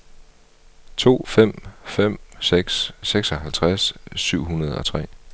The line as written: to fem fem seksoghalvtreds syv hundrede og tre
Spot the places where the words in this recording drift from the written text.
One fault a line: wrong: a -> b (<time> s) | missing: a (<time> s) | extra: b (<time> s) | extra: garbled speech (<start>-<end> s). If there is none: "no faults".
extra: seks (2.4 s)